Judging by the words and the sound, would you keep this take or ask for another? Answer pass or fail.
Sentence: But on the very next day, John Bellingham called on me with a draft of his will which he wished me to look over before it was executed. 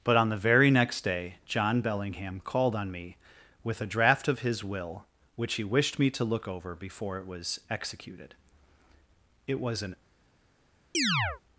fail